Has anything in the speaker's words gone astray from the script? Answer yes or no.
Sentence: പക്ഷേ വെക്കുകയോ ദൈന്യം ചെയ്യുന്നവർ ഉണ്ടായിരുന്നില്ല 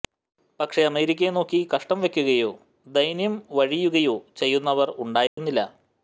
yes